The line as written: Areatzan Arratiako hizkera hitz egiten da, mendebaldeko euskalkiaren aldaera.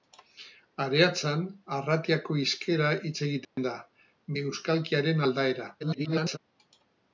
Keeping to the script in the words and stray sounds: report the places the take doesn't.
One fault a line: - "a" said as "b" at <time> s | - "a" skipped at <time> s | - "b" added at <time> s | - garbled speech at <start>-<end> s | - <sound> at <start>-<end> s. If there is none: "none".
- dropout at 3.4-3.6 s
- "mendebaldeko" skipped at 3.8 s
- garbled speech at 5.8-6.4 s